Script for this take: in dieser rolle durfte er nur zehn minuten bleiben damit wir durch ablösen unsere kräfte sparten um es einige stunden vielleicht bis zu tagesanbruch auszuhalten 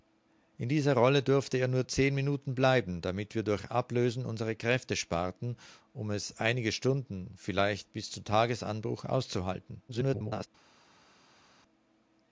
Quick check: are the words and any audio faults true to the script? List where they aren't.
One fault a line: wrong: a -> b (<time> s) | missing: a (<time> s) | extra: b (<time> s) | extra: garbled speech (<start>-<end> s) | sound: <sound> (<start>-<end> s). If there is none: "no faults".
extra: garbled speech (9.9-10.5 s)